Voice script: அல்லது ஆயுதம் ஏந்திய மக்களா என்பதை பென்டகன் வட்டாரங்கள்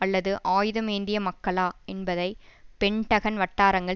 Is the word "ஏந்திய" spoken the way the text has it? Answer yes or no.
yes